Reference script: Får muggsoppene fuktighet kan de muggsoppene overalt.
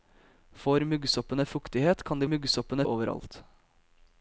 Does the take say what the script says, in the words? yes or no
yes